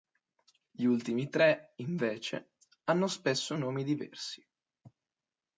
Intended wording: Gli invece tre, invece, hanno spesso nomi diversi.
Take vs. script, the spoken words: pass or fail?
fail